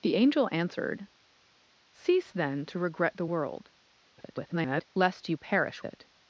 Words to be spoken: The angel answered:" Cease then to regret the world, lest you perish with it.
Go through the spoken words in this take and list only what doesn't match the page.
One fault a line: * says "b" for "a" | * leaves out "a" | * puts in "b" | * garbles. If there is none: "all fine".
* garbles
* leaves out "with"